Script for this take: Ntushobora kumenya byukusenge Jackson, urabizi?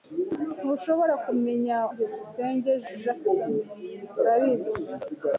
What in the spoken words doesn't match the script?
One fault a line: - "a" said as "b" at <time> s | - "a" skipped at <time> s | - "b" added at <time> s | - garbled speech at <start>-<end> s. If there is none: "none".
none